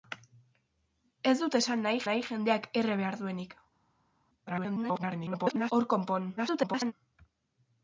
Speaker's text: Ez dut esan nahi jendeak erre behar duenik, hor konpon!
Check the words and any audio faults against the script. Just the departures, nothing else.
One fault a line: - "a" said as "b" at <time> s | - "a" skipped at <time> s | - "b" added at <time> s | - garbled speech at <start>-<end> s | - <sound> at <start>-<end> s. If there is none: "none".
- "nahi" added at 2.1 s
- garbled speech at 4.5-5.7 s
- garbled speech at 6.4-6.9 s